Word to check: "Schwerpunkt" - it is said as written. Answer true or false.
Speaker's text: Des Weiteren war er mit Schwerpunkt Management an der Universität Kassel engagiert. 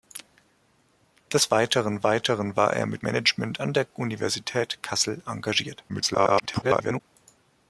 false